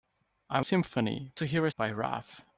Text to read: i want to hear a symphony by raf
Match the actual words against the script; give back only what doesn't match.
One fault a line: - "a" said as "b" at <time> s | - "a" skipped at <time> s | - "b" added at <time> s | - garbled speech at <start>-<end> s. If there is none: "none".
- "want" said as "symphony" at 0.6 s
- "symphony" skipped at 1.7 s